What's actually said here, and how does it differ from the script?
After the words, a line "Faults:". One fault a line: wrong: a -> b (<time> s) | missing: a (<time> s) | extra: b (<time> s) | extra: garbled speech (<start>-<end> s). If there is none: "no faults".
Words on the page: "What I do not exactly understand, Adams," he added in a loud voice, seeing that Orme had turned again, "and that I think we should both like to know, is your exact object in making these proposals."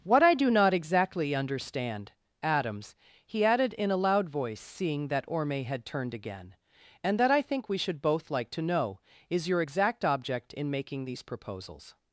"What I do not exactly understand, Adams," he added in a loud voice, seeing that Orme had turned again, "and that I think we should both like to know, is your exact object in making these proposals."
Faults:
no faults